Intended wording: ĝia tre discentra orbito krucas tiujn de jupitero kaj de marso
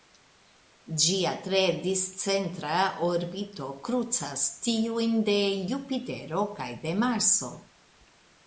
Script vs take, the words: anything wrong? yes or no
no